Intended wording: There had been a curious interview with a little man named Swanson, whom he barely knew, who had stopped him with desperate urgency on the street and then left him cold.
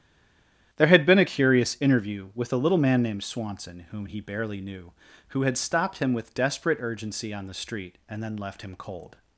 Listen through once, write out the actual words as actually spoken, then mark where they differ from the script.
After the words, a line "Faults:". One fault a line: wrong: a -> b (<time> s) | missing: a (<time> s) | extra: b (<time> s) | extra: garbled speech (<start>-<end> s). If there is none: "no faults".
There had been a curious interview with a little man named Swanson, whom he barely knew, who had stopped him with desperate urgency on the street and then left him cold.
Faults:
no faults